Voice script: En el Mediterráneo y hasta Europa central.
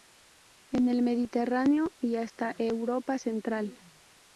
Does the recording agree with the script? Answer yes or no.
yes